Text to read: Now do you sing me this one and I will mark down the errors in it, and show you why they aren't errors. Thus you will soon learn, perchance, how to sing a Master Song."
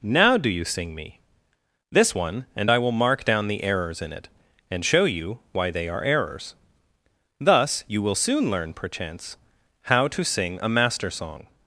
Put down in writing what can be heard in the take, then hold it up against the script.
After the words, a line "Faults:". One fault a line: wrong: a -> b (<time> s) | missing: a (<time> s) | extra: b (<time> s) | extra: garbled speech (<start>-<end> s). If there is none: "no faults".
Now do you sing me this one and I will mark down the errors in it, and show you why they are errors. Thus you will soon learn, perchance, how to sing a Master Song."
Faults:
wrong: aren't -> are (5.9 s)